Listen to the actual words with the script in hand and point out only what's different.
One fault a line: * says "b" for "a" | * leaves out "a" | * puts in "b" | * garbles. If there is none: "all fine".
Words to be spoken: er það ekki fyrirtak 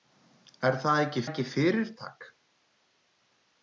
* puts in "ekki"